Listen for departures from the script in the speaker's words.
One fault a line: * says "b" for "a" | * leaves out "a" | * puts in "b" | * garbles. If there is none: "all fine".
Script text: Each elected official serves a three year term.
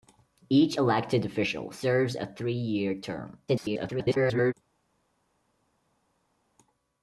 * garbles